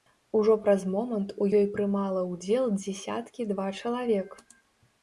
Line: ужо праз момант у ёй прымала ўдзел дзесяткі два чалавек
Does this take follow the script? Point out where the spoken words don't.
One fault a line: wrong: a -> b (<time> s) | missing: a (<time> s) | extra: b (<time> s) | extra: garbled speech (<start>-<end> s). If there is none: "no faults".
no faults